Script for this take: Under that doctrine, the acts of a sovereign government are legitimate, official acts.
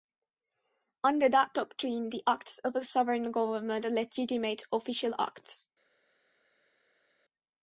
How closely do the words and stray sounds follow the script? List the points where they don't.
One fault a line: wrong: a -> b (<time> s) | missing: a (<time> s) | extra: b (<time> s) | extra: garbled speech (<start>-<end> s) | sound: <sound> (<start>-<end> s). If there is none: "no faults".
no faults